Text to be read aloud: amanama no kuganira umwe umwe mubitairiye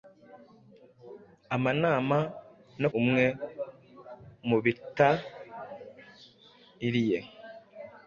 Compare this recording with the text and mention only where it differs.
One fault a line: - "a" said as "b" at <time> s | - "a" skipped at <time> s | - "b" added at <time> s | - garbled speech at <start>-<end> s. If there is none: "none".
- "kuganira umwe" skipped at 2.9 s